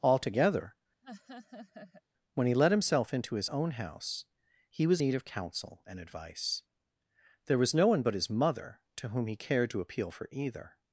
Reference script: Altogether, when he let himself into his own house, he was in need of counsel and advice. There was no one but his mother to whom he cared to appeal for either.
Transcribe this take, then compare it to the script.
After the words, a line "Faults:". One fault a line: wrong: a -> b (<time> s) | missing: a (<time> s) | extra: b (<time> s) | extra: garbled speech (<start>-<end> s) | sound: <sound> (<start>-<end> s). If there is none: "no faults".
Altogether, when he let himself into his own house, he was need of counsel and advice. There was no one but his mother to whom he cared to appeal for either.
Faults:
sound: laugh (1.0-2.0 s)
missing: in (5.0 s)